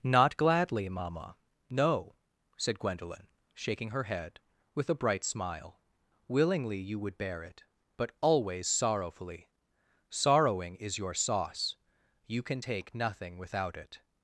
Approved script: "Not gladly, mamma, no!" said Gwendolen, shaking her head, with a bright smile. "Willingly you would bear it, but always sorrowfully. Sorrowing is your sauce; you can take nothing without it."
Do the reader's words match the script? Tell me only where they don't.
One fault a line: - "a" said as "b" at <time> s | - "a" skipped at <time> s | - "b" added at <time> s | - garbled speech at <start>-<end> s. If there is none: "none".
none